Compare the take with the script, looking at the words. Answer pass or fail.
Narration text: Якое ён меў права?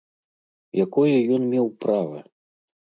pass